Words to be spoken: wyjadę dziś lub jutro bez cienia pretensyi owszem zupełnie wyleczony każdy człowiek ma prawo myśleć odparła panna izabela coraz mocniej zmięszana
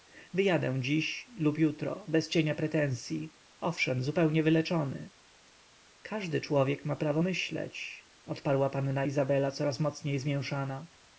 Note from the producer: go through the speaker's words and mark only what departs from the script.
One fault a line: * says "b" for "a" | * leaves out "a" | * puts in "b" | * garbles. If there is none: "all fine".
all fine